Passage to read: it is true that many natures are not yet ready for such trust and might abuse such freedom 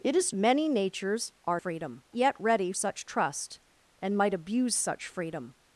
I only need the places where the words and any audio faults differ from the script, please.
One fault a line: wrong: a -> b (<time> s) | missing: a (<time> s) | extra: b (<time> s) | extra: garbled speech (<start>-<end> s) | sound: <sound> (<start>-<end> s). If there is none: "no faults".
missing: true that (0.3 s)
wrong: not -> freedom (1.5 s)
missing: for (2.7 s)